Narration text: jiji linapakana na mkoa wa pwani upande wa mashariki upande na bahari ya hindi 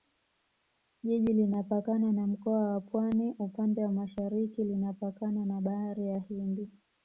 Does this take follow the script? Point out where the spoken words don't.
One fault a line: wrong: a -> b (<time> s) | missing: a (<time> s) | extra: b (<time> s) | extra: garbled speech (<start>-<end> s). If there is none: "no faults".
wrong: upande -> linapakana (4.6 s)